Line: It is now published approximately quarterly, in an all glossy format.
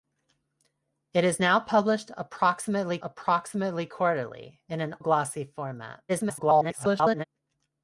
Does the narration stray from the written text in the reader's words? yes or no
yes